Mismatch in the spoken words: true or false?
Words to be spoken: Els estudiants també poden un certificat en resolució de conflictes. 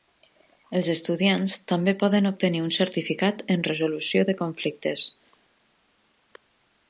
true